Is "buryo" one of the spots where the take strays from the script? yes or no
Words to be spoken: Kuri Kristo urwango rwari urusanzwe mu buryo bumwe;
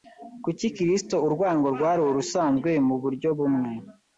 no